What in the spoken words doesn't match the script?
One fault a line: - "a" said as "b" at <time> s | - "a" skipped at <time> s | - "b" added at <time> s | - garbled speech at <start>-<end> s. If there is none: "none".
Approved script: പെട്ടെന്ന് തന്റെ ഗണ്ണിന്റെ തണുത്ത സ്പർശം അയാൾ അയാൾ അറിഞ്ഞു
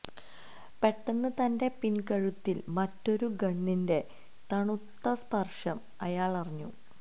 - "പിൻകഴുത്തിൽ മറ്റൊരു" added at 1.8 s
- "അയാൾ" skipped at 6.3 s